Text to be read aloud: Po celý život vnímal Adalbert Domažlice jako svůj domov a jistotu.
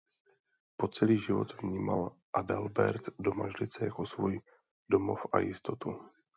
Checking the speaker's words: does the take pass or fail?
pass